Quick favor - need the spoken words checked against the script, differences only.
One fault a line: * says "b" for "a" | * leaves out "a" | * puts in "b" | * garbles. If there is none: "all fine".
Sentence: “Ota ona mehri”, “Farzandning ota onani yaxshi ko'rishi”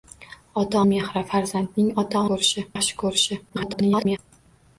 * leaves out "ona"
* says "ko'rishi" for "onani"
* garbles